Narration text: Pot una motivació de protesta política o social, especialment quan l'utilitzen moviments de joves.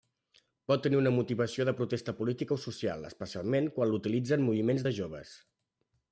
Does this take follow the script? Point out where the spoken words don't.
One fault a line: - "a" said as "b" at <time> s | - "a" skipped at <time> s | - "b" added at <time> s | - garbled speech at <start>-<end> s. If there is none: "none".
- "tenir" added at 0.8 s